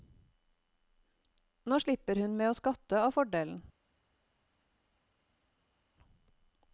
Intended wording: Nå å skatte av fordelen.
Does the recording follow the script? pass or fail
fail